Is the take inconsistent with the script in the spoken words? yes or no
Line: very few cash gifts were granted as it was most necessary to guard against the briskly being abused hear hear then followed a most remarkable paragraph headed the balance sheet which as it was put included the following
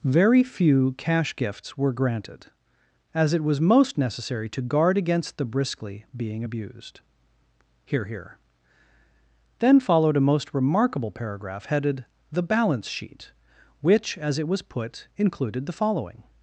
no